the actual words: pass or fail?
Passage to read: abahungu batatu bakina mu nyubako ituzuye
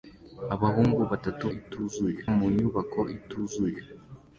fail